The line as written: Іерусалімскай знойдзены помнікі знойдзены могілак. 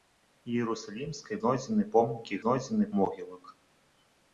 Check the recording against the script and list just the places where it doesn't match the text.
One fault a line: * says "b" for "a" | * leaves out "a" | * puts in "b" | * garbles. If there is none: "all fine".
all fine